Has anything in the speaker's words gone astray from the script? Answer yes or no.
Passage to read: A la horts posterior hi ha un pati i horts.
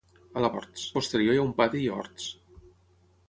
no